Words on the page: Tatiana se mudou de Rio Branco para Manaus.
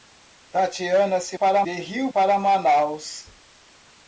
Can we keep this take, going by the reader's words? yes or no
no